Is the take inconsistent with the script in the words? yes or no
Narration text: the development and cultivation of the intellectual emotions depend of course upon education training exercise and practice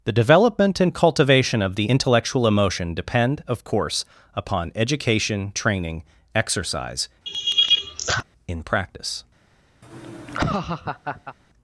yes